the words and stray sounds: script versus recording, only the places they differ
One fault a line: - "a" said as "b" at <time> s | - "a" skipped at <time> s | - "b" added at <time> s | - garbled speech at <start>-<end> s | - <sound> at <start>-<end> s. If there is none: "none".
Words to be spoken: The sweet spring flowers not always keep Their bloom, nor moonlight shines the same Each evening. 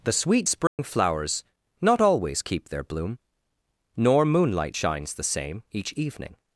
- dropout at 0.7-0.8 s